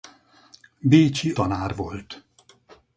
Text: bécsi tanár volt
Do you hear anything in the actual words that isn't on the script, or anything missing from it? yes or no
no